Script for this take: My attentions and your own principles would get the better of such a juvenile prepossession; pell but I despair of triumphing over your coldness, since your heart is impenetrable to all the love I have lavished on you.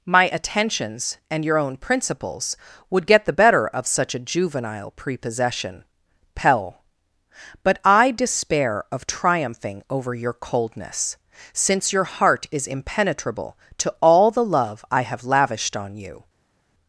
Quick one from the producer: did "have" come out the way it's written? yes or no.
yes